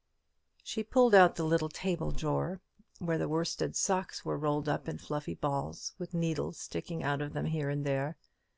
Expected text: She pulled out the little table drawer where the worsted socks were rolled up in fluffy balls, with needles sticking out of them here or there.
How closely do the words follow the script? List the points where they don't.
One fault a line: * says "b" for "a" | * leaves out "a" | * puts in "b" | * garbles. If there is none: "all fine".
* says "and" for "or"